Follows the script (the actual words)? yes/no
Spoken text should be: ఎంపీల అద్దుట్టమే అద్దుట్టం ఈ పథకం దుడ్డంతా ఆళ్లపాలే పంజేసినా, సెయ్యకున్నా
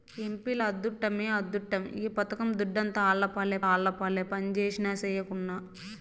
no